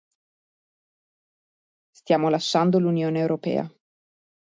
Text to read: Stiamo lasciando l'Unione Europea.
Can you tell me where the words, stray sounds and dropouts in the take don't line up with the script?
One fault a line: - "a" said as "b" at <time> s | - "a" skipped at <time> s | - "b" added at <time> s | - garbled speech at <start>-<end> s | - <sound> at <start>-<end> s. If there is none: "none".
none